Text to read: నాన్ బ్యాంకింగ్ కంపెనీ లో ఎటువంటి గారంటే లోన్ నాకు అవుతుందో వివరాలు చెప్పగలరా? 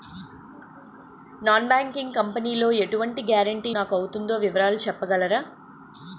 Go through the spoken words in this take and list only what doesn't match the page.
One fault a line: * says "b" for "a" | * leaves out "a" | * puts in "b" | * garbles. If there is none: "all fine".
* leaves out "లోన్"